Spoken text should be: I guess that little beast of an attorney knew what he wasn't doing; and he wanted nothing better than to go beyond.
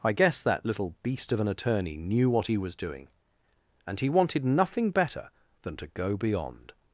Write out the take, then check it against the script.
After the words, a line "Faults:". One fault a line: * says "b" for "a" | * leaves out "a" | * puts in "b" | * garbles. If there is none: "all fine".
I guess that little beast of an attorney knew what he was doing; and he wanted nothing better than to go beyond.
Faults:
* says "was" for "wasn't"